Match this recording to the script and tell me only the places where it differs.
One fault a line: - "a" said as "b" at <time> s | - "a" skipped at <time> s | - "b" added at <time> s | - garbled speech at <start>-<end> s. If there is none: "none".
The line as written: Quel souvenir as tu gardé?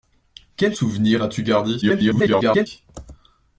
- garbled speech at 1.8-2.7 s